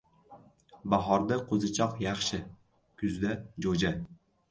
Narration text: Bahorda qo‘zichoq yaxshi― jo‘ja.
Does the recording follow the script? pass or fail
fail